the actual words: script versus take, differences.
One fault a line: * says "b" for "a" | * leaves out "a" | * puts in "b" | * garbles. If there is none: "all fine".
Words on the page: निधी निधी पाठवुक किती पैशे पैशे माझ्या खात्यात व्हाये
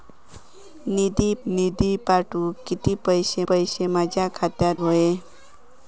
all fine